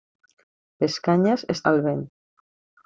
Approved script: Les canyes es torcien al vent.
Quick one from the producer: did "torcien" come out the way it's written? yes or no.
no